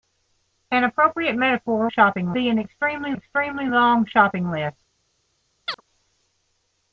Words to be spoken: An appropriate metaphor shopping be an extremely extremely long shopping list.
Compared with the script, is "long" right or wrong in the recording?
right